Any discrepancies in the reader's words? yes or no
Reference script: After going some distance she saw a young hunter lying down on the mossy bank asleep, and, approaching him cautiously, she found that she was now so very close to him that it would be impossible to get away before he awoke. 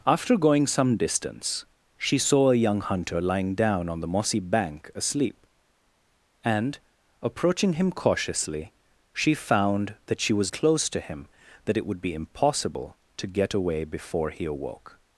yes